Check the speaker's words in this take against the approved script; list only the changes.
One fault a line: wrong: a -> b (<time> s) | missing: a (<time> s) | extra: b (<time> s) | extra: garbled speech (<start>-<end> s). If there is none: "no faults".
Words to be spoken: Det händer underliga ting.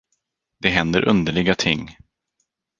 no faults